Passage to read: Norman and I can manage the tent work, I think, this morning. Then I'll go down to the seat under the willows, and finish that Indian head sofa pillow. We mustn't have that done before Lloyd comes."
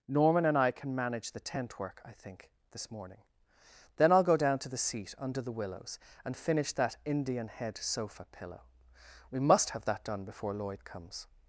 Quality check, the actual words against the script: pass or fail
fail